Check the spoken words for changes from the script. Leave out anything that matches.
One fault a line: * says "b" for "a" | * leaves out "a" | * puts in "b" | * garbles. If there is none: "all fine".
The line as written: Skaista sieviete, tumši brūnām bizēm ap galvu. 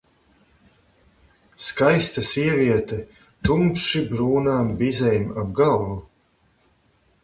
all fine